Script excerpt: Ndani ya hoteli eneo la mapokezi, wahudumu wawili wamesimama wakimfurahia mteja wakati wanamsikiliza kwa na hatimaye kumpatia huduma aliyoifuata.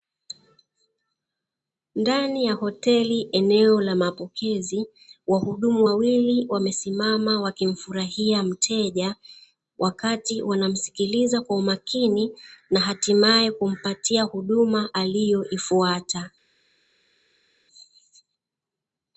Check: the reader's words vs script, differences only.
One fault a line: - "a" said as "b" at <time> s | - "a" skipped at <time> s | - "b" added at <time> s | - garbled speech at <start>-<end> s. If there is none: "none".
- "umakini" added at 11.6 s